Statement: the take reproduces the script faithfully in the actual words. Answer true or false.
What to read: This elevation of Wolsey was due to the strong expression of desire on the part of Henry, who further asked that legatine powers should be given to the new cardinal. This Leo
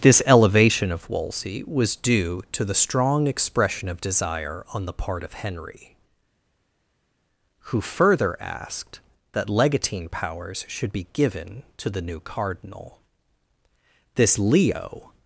true